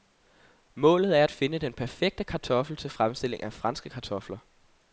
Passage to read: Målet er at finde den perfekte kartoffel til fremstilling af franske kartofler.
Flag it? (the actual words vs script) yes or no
no